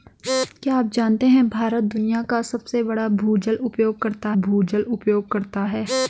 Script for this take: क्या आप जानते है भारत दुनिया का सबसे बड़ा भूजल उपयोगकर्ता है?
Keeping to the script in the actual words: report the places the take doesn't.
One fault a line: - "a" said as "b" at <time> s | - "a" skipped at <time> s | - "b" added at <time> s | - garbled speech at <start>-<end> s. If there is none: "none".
- "भूजल उपयोगकर्ता" added at 4.4 s